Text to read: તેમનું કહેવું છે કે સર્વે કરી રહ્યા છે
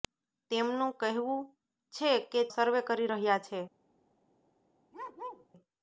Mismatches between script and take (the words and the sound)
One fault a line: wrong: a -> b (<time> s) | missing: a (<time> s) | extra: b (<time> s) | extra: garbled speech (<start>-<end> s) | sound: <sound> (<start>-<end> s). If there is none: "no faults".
sound: bark (4.9-5.5 s)